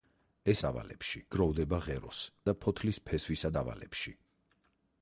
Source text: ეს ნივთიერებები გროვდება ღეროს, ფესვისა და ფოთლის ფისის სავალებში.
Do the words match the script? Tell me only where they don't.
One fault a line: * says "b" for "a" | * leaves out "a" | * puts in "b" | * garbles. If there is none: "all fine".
* says "სავალებში" for "ნივთიერებები"
* leaves out "ფესვისა"
* says "ფესვისა" for "ფისის"